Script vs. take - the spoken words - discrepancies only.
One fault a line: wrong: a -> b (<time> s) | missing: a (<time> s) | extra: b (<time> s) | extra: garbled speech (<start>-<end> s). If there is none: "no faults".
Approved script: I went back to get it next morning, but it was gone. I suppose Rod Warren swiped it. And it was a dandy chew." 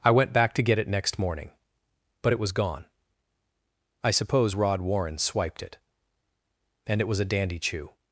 no faults